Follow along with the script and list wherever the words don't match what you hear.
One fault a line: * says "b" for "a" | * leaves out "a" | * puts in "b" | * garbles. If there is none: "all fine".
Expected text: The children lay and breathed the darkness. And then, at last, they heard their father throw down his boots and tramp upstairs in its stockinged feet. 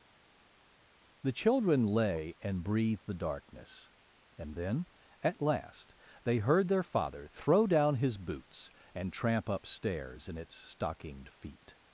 all fine